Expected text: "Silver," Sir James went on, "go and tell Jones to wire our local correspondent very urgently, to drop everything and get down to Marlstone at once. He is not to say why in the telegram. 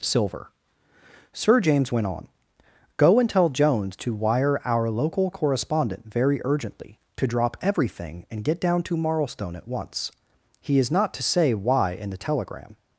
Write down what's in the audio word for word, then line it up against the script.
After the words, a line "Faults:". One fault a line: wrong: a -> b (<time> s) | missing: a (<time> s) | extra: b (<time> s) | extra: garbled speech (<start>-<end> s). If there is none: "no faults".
"Silver," Sir James went on, "go and tell Jones to wire our local correspondent very urgently, to drop everything and get down to Marlstone at once. He is not to say why in the telegram.
Faults:
no faults